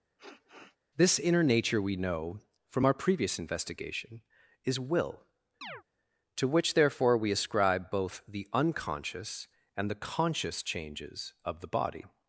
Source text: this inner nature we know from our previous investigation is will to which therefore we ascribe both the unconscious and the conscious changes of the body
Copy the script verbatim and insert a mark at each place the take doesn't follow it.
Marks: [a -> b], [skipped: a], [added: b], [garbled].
this inner nature we know from our previous investigation is will to which therefore we ascribe both the unconscious and the conscious changes of the body